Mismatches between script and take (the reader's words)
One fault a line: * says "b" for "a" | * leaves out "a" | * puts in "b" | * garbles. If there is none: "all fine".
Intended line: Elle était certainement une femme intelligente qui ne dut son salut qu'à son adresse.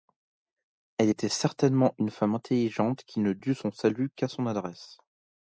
all fine